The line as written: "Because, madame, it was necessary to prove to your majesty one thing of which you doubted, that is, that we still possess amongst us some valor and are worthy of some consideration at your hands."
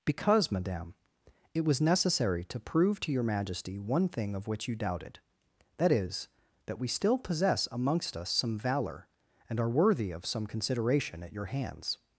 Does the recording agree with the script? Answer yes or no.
yes